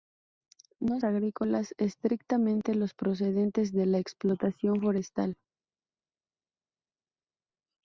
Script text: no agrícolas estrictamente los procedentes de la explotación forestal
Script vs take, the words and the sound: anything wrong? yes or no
no